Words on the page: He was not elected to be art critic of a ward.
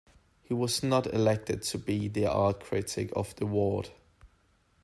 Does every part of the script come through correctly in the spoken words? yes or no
no